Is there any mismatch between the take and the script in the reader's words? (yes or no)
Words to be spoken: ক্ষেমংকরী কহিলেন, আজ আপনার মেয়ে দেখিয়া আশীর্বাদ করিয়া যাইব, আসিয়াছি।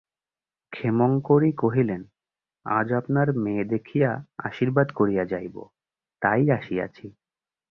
yes